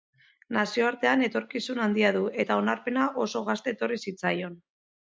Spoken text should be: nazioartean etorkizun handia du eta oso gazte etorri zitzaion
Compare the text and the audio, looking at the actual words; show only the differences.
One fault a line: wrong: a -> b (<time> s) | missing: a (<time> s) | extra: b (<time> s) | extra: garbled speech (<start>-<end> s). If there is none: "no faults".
extra: onarpena (2.7 s)